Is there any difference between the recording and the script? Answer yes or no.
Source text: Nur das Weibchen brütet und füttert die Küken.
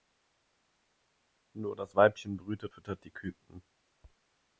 yes